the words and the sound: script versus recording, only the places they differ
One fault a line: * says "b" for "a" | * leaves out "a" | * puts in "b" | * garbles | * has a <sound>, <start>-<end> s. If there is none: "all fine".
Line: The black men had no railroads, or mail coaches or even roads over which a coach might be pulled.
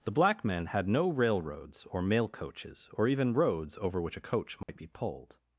* has a dropout, 4.6-4.7 s